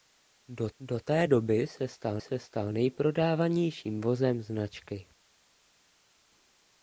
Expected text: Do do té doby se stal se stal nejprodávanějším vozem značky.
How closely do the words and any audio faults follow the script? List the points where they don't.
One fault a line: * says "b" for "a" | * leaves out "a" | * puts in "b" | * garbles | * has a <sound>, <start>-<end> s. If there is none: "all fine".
all fine